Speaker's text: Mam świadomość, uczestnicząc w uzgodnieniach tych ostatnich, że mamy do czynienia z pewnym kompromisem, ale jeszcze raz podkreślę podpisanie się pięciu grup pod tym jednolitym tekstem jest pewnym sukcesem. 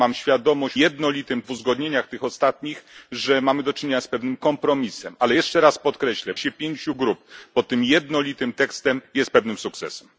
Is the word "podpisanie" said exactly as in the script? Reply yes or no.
no